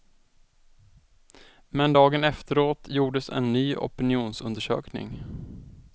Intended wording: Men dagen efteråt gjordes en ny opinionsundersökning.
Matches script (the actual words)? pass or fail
pass